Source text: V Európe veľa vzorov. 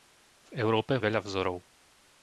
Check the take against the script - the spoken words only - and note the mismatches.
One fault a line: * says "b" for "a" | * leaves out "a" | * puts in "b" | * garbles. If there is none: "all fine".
all fine